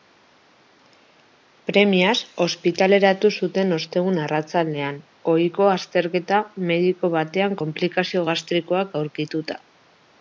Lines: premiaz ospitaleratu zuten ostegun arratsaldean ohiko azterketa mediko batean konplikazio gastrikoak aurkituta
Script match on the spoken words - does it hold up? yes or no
yes